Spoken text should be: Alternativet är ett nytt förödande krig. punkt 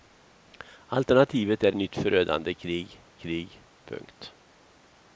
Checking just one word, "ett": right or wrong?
wrong